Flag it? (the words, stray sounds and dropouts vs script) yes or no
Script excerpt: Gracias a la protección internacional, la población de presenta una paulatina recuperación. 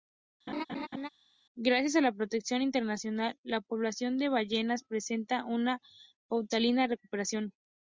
yes